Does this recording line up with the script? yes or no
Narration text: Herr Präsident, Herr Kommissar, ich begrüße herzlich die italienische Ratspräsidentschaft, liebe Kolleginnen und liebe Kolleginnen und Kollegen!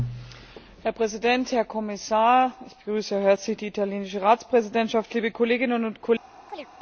no